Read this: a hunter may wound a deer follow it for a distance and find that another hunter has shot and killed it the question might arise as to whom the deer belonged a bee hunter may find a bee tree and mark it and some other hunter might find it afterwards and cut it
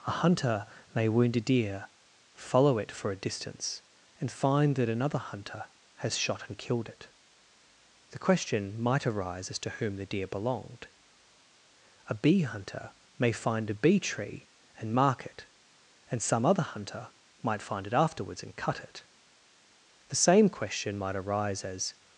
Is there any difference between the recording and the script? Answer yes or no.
yes